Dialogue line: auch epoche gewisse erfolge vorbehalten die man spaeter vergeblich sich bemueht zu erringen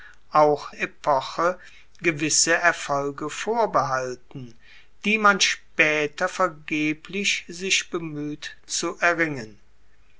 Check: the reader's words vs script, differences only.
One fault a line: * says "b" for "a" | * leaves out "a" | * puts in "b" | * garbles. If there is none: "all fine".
all fine